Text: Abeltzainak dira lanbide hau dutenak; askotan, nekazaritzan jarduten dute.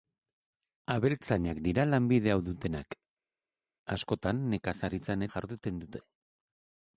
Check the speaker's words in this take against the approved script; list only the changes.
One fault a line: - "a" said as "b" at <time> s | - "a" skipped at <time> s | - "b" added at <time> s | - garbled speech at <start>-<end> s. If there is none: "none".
none